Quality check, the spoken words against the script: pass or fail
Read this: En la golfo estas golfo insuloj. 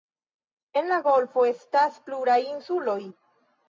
fail